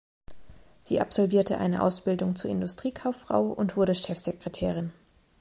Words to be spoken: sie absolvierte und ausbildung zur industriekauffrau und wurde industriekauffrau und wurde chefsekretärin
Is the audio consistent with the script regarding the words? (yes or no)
no